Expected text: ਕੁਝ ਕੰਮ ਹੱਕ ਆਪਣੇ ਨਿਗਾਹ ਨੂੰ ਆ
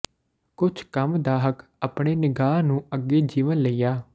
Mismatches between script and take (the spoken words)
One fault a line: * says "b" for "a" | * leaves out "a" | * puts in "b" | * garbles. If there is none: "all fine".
* puts in "ਦਾ"
* puts in "ਅੱਗੇ ਜੀਵਨ ਲਈ"